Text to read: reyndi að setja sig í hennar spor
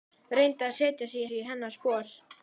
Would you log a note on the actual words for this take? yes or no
yes